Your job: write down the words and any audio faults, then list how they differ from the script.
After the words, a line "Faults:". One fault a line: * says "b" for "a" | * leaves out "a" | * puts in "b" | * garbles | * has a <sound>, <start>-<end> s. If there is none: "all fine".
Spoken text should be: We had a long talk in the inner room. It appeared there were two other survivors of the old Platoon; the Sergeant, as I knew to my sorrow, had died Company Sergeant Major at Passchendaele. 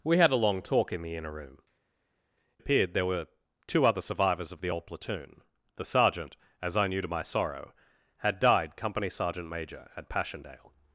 We had a long talk in the inner room. Appeared there were two other survivors of the old Platoon; the Sergeant, as I knew to my sorrow, had died Company Sergeant Major at Passchendaele.
Faults:
* leaves out "It"